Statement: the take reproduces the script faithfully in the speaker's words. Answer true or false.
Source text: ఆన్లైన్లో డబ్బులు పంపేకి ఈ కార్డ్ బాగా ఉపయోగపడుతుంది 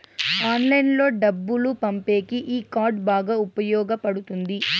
true